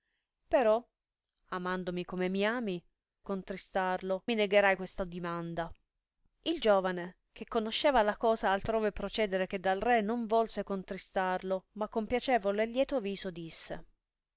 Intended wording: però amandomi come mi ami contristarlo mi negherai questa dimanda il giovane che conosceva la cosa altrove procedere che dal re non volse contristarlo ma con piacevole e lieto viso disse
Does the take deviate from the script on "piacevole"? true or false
false